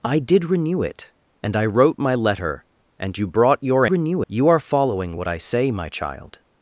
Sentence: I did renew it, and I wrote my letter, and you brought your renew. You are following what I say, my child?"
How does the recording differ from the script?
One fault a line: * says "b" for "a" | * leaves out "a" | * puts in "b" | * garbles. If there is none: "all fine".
all fine